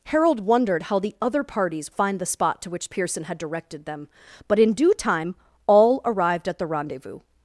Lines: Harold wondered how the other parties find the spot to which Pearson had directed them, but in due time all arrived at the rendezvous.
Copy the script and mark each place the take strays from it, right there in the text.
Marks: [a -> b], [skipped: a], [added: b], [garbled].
Harold wondered how the other parties find the spot to which Pearson had directed them, but in due time all arrived at the rendezvous.